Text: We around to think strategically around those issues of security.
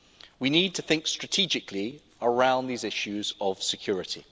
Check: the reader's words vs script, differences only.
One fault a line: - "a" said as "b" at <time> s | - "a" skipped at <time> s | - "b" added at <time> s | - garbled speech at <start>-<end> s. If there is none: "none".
- "around" said as "need" at 0.5 s
- "those" said as "these" at 2.7 s